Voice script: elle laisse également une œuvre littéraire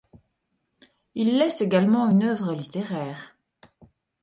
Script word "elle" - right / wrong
wrong